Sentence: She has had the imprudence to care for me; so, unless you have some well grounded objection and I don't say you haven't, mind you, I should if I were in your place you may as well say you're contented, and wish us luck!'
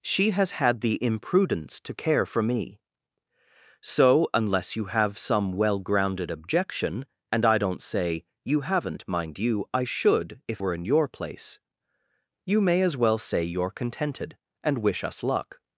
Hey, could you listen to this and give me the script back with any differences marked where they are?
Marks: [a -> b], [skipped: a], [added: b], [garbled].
She has had the imprudence to care for me; so, unless you have some well grounded objection and I don't say you haven't, mind you, I should if [skipped: I] were in your place you may as well say you're contented, and wish us luck!'